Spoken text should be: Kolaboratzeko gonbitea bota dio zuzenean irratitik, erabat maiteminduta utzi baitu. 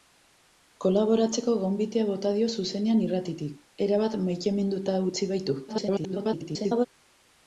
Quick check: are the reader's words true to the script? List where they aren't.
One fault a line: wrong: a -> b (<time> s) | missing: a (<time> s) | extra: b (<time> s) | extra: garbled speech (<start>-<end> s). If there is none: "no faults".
extra: garbled speech (5.7-6.9 s)